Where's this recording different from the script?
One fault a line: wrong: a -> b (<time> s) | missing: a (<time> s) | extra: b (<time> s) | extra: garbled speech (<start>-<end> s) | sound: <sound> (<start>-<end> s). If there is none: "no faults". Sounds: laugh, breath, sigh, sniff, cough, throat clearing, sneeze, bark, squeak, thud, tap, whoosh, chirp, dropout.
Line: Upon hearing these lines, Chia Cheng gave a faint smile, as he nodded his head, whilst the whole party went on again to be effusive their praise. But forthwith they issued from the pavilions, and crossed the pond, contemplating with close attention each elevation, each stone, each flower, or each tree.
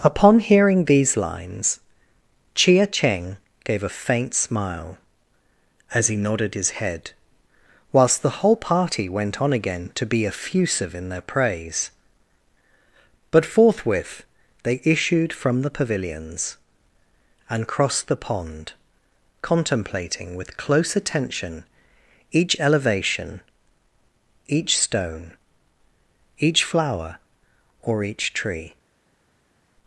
extra: in (10.9 s)